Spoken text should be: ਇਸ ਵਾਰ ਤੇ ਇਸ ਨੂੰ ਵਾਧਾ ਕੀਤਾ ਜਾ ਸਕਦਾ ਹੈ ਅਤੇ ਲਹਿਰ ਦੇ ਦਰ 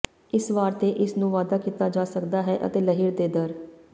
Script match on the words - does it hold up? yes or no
yes